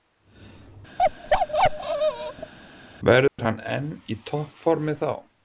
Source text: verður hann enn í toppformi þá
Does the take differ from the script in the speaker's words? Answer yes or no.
no